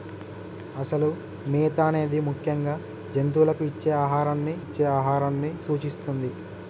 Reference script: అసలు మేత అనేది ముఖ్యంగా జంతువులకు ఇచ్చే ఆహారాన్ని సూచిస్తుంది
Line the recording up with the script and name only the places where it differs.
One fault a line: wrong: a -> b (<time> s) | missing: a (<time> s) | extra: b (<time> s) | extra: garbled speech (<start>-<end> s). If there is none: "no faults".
extra: ఇచ్చే ఆహారాన్ని (4.6 s)